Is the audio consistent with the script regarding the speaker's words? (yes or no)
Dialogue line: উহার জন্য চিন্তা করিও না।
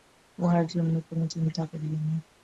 no